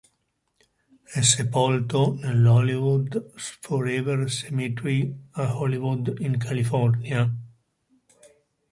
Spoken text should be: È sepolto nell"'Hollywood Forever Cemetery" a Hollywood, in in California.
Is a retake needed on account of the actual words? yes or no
yes